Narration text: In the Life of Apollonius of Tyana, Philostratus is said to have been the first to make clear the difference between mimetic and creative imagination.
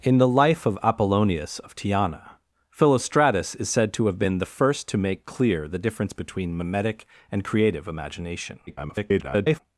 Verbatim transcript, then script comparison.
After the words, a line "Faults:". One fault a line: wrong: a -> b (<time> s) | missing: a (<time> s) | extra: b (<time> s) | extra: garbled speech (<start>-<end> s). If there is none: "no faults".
In the Life of Apollonius of Tyana, Philostratus is said to have been the first to make clear the difference between mimetic and creative imagination. [garbled]
Faults:
extra: garbled speech (8.7-9.6 s)